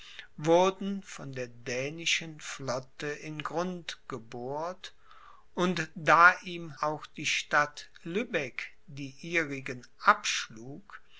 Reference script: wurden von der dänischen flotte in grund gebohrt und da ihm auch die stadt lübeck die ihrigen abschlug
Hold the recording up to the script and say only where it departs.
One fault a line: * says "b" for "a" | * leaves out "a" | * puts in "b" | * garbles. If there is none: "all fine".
all fine